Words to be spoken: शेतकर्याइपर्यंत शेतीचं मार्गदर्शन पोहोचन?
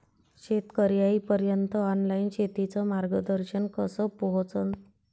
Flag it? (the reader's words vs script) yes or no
yes